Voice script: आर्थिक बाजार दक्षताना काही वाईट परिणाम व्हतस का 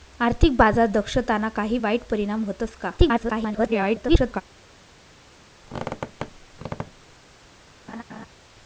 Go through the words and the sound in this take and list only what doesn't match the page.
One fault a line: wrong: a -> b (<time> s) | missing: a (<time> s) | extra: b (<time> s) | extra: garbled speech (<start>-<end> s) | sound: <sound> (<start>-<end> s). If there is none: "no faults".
extra: garbled speech (3.0-4.4 s)
sound: squeak (5.6-7.2 s)
sound: laugh (7.9-8.3 s)